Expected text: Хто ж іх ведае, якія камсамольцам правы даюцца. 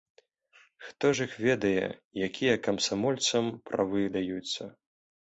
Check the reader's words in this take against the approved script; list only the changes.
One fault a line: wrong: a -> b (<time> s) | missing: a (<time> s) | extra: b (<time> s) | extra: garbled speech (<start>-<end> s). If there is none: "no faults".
no faults